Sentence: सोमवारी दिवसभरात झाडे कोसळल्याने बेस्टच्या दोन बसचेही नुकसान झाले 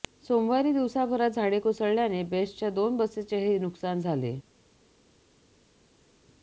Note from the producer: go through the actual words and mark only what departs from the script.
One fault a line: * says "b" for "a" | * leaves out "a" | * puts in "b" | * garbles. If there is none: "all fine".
all fine